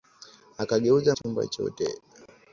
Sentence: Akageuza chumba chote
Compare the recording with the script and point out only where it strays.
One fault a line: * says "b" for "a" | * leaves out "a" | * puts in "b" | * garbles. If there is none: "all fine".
all fine